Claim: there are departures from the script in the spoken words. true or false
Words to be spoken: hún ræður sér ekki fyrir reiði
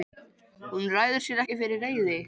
false